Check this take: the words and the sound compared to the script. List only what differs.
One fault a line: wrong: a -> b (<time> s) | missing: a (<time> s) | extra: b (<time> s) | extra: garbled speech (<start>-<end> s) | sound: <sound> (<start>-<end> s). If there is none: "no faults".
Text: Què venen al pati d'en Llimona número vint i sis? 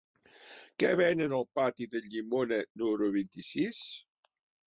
no faults